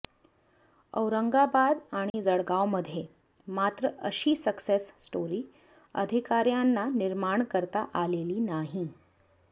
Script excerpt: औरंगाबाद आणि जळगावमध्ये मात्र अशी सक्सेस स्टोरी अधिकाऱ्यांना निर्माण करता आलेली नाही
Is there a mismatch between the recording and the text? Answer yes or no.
no